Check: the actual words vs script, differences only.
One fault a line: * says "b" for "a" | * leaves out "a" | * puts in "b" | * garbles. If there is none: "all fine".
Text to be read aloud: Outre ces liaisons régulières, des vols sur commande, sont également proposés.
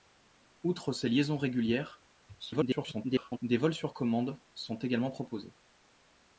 * garbles